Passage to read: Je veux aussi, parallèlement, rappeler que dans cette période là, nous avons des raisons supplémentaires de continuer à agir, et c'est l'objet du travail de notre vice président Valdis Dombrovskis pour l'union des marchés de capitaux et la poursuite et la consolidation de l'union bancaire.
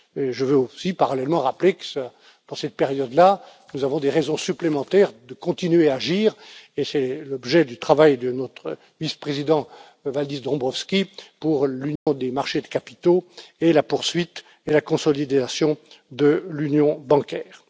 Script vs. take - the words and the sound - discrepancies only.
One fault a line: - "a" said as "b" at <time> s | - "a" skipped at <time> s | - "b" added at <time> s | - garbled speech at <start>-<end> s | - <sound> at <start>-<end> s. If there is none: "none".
- dropout at 12.0-12.1 s